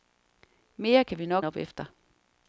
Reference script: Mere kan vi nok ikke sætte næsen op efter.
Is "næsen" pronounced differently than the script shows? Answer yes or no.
yes